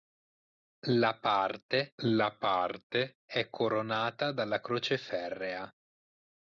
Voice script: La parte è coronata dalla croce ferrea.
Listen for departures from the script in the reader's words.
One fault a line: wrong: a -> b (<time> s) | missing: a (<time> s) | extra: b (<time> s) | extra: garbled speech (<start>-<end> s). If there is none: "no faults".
extra: la parte (2.0 s)